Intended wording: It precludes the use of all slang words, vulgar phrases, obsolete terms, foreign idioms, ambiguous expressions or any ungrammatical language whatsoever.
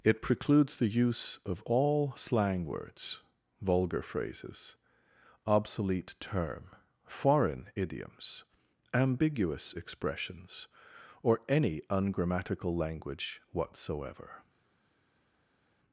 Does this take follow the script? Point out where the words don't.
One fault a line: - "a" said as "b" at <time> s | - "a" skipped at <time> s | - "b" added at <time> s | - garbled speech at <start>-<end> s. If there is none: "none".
- "terms" said as "term" at 6.2 s